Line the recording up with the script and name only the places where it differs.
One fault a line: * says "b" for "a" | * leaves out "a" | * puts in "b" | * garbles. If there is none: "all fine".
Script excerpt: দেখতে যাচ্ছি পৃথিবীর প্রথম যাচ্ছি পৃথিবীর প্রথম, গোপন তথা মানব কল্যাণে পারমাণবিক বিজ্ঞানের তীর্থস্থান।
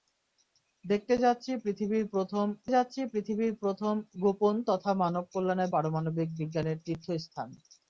all fine